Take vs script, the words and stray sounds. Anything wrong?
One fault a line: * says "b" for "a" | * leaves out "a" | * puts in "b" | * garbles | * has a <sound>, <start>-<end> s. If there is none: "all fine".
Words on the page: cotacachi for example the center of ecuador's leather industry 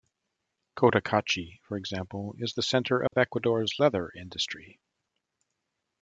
* puts in "is"
* has a dropout, 3.1-3.1 s